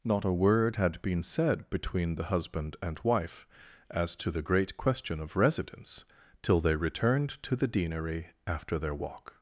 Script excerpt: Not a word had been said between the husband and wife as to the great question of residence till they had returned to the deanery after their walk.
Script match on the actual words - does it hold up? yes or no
no